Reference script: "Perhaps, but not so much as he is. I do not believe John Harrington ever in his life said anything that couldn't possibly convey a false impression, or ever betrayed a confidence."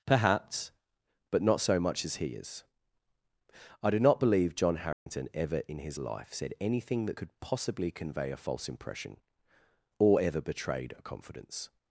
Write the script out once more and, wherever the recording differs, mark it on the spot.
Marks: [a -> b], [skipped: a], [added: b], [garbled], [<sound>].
"Perhaps, but not so much as he is. I do not believe John Harrington [dropout] ever in his life said anything that [couldn't -> could] possibly convey a false impression, or ever betrayed a confidence."